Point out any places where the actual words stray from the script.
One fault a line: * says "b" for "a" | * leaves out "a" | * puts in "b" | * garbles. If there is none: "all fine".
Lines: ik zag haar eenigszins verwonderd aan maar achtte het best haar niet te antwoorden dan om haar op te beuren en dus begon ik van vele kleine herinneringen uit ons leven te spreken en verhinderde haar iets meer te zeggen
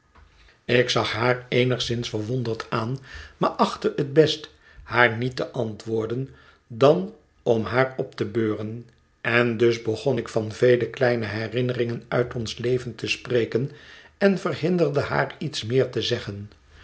all fine